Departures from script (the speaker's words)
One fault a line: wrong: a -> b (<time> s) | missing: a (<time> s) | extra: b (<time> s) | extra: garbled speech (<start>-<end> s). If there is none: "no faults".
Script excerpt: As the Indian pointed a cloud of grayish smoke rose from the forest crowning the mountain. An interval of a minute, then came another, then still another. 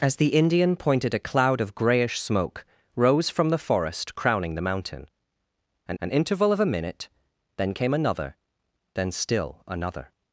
extra: an (6.0 s)